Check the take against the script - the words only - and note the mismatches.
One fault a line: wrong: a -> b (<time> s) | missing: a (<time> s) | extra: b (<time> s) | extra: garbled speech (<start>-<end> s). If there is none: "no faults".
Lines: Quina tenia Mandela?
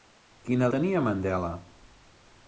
no faults